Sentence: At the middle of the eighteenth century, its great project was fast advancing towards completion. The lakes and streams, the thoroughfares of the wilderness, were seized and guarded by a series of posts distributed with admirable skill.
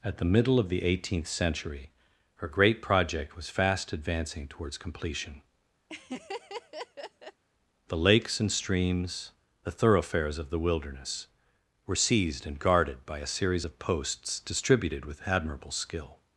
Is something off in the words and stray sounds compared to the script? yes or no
yes